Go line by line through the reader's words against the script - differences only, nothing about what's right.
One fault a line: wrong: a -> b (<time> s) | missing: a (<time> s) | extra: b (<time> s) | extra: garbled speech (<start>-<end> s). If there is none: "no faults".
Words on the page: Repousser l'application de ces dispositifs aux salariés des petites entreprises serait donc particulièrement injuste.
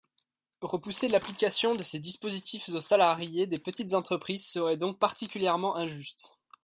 no faults